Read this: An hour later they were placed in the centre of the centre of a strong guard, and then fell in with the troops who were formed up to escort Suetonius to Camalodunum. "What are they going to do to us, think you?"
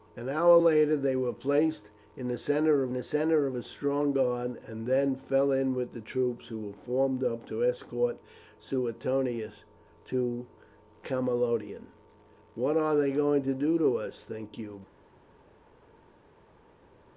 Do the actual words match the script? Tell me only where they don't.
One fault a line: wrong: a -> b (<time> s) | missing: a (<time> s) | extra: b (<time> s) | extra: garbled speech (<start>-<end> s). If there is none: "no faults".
no faults